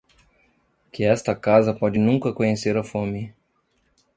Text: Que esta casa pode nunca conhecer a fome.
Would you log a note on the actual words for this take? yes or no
no